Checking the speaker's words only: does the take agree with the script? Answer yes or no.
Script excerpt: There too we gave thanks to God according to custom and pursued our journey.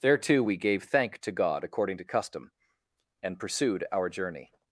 no